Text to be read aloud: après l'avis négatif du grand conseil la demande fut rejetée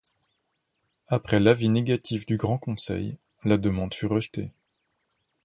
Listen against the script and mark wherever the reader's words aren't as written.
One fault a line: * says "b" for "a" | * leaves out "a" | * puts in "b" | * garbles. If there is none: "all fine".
all fine